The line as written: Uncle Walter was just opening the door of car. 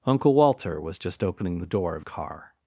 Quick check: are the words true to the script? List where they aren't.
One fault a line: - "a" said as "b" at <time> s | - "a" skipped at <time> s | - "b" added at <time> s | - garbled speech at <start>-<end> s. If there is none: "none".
none